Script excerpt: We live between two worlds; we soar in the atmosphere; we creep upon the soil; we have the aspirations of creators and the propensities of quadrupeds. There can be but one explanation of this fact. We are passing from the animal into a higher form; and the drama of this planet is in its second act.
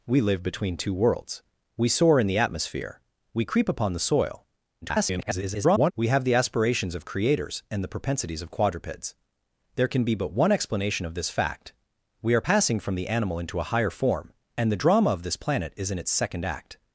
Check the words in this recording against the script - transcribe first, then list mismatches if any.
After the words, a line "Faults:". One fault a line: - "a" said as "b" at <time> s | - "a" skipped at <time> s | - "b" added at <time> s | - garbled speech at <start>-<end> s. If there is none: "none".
We live between two worlds; we soar in the atmosphere; we creep upon the soil; [garbled] we have the aspirations of creators and the propensities of quadrupeds. There can be but one explanation of this fact. We are passing from the animal into a higher form; and the drama of this planet is in its second act.
Faults:
- garbled speech at 4.8-5.9 s